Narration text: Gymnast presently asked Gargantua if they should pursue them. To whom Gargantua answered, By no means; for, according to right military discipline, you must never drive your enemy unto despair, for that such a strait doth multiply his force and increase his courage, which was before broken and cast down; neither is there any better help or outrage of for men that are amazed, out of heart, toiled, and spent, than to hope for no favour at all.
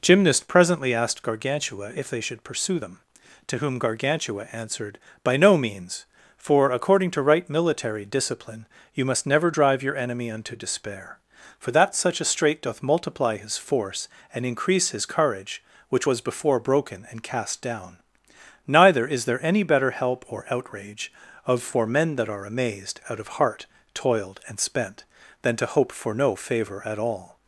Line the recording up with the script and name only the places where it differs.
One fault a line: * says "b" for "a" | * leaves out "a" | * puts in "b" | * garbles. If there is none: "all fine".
all fine